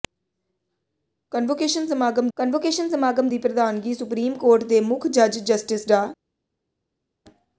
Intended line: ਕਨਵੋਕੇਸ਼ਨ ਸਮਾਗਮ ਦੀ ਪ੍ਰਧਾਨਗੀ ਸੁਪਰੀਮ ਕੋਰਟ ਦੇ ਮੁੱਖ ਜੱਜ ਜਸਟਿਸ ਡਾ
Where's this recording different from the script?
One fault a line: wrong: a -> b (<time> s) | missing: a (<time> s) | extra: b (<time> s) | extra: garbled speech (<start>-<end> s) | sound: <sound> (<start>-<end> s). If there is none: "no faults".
extra: ਕਨਵੋਕੇਸ਼ਨ ਸਮਾਗਮ (2.4 s)